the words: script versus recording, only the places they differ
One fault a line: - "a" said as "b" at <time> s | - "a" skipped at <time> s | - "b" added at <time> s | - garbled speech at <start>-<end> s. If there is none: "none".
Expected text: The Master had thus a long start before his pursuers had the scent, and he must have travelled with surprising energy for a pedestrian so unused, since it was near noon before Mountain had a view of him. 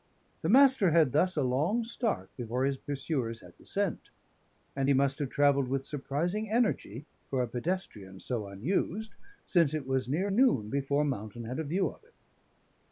none